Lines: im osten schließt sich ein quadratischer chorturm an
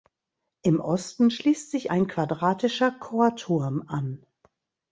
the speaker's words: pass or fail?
pass